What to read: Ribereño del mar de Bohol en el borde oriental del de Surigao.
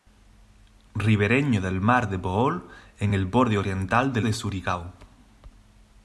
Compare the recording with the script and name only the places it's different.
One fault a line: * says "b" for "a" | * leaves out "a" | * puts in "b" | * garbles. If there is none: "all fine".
all fine